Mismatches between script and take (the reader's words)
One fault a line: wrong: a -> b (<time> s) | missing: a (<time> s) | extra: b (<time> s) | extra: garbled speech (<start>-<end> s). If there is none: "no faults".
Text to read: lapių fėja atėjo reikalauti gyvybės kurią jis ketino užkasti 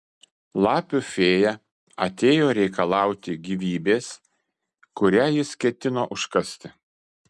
no faults